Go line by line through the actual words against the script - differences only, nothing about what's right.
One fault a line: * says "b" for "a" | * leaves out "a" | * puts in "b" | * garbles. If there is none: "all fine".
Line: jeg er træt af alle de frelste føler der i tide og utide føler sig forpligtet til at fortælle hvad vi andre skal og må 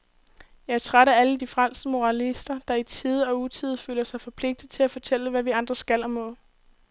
* says "moralister" for "føler"